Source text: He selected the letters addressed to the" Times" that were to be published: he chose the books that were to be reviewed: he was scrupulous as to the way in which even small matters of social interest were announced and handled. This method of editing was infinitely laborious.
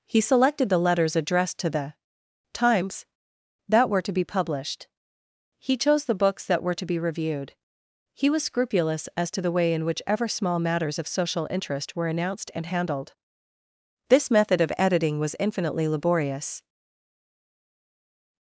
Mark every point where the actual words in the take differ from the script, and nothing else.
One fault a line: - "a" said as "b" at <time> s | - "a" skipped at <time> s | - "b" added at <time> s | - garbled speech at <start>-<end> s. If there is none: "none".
- "even" said as "ever" at 10.1 s